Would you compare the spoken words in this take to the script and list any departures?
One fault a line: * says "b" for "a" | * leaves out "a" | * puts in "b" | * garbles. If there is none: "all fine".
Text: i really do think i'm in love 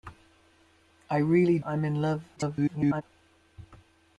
* leaves out "do think"
* garbles